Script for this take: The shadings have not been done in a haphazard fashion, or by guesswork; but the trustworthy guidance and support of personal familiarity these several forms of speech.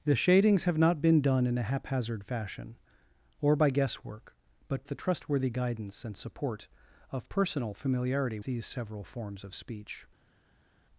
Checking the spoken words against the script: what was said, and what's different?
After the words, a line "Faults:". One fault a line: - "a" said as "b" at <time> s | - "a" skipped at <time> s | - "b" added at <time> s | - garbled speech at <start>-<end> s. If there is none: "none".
The shadings have not been done in a haphazard fashion, or by guesswork; but the trustworthy guidance and support of personal familiarity these several forms of speech.
Faults:
none